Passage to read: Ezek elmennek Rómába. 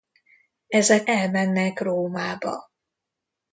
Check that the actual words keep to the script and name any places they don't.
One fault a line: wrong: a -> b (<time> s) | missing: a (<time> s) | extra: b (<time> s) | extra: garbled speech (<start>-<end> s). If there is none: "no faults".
no faults